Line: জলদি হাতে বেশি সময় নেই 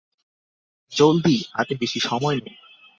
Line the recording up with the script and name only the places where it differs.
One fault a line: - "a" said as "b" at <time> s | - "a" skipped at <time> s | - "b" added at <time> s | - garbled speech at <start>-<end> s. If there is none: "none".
none